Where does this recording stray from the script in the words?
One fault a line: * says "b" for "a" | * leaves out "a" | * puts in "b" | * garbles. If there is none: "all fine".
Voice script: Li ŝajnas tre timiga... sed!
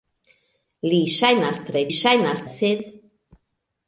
* says "ŝajnas" for "timiga"